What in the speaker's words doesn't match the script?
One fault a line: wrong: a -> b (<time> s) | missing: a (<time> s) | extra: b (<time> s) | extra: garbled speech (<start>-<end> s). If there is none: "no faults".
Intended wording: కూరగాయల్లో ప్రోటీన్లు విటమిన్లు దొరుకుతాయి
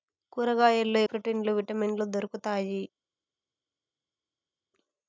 no faults